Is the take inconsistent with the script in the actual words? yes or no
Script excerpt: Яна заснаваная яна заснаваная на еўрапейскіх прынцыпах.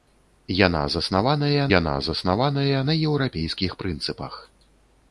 no